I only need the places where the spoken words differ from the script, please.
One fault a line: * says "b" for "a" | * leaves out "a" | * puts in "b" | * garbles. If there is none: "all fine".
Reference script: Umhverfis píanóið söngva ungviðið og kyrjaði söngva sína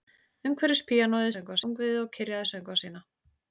all fine